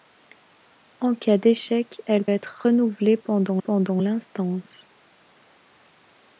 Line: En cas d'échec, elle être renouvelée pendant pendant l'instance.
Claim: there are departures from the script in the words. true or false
false